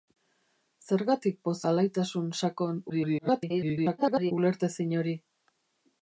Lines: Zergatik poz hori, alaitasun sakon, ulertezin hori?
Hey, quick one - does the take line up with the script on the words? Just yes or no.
no